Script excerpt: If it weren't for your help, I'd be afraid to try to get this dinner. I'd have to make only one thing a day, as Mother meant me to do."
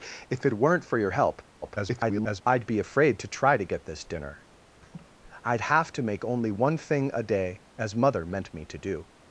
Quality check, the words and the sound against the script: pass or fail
fail